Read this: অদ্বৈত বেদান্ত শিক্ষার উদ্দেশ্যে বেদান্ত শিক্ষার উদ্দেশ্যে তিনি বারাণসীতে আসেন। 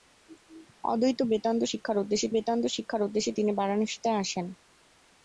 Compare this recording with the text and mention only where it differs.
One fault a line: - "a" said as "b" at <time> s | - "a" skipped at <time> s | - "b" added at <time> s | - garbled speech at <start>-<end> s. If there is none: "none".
none